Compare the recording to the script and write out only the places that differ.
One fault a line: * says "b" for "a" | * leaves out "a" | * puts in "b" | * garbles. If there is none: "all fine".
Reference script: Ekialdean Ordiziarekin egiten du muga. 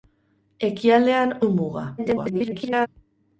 * leaves out "Ordiziarekin egiten"
* garbles